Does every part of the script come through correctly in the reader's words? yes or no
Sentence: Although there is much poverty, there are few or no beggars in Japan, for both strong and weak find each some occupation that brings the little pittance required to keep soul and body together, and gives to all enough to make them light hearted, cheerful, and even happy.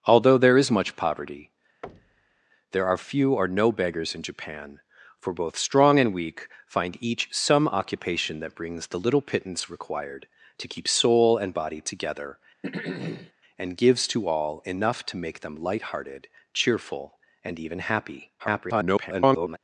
no